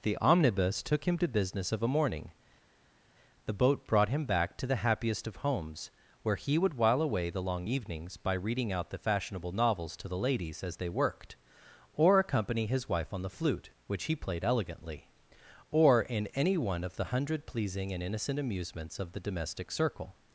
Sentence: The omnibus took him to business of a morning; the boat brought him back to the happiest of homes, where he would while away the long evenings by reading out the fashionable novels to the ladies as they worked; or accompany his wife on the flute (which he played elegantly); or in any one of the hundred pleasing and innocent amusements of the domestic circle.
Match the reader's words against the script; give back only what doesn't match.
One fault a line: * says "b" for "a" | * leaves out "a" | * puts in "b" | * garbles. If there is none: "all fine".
all fine